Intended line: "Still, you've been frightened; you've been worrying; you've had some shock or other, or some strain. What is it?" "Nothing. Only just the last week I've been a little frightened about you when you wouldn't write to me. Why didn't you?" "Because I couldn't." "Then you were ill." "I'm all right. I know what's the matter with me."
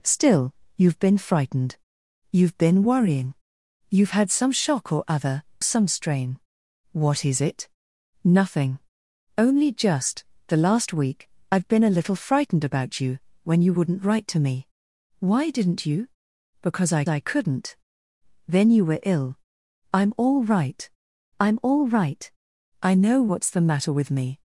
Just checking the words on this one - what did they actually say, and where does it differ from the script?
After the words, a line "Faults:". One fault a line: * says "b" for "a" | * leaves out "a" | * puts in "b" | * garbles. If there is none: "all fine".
"Still, you've been frightened; you've been worrying; you've had some shock or other, some strain. What is it?" "Nothing. Only just the last week I've been a little frightened about you when you wouldn't write to me. Why didn't you?" "Because I I couldn't." "Then you were ill." "I'm all right I'm all right. I know what's the matter with me."
Faults:
* leaves out "or"
* puts in "I"
* puts in "I'm all right"